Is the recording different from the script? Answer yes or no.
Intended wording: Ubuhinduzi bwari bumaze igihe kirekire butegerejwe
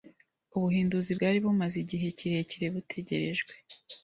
no